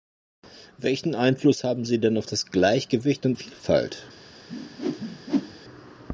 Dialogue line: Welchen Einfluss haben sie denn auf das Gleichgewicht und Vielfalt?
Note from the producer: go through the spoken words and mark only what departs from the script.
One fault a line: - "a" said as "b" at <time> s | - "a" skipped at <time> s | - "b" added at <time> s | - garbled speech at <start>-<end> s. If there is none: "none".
none